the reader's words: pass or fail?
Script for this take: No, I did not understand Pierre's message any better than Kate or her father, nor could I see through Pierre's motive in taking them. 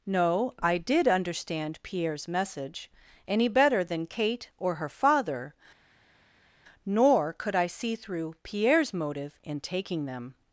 fail